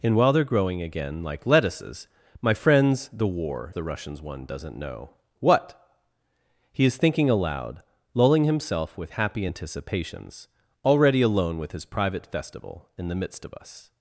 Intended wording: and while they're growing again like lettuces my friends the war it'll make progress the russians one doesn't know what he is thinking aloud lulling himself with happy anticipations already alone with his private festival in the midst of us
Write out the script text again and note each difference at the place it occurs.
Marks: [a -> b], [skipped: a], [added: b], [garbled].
and while they're growing again like lettuces my friends the war [skipped: it'll make progress] the russians one doesn't know what he is thinking aloud lulling himself with happy anticipations already alone with his private festival in the midst of us